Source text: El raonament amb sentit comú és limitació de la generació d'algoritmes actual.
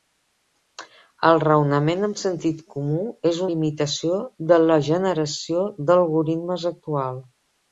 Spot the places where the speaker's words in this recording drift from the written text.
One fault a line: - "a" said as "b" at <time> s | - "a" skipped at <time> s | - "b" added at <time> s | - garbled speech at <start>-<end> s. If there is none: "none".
none